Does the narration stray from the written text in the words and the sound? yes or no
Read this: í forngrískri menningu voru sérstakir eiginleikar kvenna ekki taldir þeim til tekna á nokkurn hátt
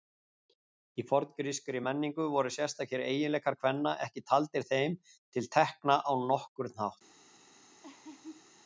yes